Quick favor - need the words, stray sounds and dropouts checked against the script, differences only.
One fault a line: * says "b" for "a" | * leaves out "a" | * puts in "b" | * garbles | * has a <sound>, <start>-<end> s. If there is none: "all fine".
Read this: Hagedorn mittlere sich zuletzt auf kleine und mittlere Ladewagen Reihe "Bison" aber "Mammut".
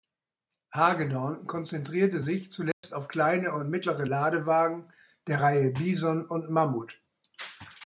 * says "konzentrierte" for "mittlere"
* has a dropout, 2.7-2.8 s
* puts in "der"
* says "und" for "aber"